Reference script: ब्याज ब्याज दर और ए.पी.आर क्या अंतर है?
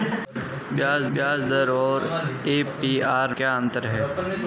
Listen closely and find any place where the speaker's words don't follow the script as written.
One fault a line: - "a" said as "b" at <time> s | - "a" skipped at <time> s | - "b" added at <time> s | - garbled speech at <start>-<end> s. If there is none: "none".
none